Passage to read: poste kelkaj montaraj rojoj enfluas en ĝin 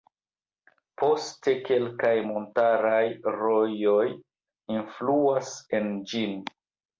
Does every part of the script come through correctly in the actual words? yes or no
yes